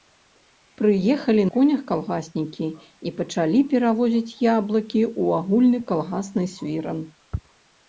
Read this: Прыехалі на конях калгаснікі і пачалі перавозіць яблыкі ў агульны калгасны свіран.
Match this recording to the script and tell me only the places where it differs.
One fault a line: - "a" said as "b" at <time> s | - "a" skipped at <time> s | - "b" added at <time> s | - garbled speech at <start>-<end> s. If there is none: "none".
- "на" skipped at 1.4 s